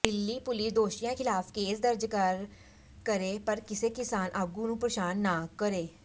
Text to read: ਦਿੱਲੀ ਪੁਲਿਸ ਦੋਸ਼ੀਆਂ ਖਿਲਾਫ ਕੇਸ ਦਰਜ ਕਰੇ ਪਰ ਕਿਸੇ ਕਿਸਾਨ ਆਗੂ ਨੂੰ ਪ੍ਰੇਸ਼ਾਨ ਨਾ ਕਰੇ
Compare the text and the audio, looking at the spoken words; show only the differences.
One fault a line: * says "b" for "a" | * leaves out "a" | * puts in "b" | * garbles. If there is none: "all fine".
all fine